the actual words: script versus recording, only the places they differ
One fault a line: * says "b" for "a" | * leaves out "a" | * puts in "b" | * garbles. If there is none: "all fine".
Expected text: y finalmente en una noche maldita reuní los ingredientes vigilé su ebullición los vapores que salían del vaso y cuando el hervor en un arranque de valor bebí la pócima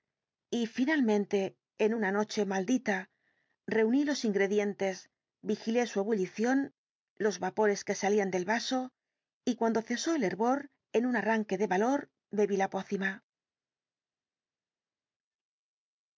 * puts in "cesó"